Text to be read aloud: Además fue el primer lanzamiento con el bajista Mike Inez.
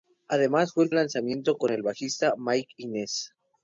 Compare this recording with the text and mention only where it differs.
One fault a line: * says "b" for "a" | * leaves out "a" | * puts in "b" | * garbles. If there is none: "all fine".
* leaves out "primer"